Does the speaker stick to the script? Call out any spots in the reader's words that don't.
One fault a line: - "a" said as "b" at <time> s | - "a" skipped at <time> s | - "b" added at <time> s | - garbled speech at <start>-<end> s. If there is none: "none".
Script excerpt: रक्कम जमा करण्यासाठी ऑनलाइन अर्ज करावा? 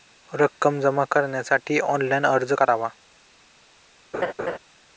none